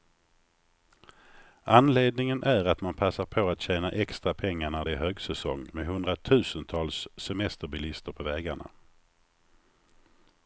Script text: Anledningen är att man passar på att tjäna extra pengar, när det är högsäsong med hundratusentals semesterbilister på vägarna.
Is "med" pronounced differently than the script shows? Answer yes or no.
no